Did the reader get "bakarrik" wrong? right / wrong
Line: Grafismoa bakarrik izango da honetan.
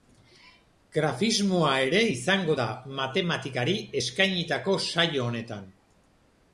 wrong